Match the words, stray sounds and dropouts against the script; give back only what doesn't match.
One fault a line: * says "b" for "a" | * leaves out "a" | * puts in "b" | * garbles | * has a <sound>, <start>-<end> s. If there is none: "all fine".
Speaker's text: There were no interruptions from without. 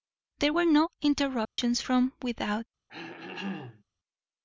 * has a dropout, 1.4-1.6 s
* has a throat clearing, 2.9-3.8 s